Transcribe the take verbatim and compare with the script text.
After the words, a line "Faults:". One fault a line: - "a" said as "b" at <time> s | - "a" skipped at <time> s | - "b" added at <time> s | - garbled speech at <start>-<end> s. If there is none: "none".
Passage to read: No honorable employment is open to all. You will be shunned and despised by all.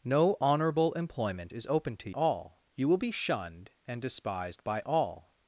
No honorable employment is open to all. You will be shunned and despised by all.
Faults:
none